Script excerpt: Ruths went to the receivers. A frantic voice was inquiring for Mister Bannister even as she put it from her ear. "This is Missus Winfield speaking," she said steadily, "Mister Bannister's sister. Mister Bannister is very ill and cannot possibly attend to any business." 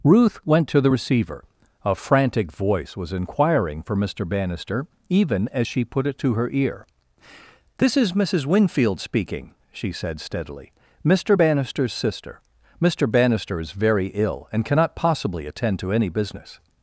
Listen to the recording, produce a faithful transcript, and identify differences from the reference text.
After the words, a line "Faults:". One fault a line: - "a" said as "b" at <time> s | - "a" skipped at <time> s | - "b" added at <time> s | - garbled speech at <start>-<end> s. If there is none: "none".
Ruth went to the receiver. A frantic voice was inquiring for Mister Bannister even as she put it to her ear. "This is Missus Winfield speaking," she said steadily, "Mister Bannister's sister. Mister Bannister is very ill and cannot possibly attend to any business."
Faults:
- "Ruths" said as "Ruth" at 0.0 s
- "receivers" said as "receiver" at 0.9 s
- "from" said as "to" at 6.2 s